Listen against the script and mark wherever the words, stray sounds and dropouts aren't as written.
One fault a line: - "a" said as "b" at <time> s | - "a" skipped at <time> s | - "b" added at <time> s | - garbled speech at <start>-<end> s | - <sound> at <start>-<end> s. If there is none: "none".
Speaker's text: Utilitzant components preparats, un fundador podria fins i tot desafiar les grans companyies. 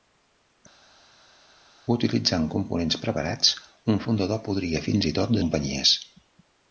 - "desafiar les grans" skipped at 5.4 s